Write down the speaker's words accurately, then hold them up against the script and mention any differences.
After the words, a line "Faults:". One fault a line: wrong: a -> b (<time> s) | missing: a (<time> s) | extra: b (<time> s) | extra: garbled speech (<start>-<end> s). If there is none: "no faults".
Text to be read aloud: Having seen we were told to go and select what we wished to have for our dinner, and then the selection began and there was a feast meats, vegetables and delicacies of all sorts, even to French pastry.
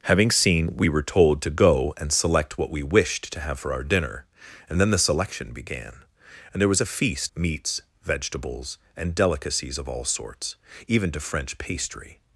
Having seen we were told to go and select what we wished to have for our dinner, and then the selection began and there was a feast meats, vegetables and delicacies of all sorts, even to French pastry.
Faults:
no faults